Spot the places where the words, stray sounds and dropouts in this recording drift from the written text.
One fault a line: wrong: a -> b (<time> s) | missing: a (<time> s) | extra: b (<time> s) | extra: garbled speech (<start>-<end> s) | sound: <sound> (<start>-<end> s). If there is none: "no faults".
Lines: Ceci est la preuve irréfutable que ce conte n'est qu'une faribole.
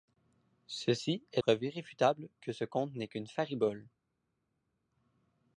missing: la (1.4 s)